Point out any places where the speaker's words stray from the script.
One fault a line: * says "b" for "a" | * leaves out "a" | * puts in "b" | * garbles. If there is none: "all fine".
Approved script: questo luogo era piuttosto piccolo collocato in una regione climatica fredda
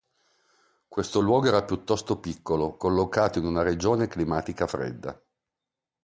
all fine